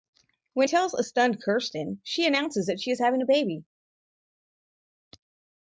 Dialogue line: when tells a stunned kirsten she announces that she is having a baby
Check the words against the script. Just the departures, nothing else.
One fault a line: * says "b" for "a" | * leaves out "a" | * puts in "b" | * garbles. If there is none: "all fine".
all fine